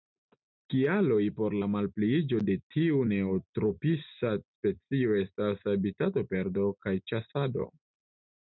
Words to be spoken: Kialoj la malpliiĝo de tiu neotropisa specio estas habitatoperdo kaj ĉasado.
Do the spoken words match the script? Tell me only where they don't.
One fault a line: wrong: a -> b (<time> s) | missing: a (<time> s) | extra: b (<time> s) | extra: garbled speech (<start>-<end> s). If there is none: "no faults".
extra: por (1.4 s)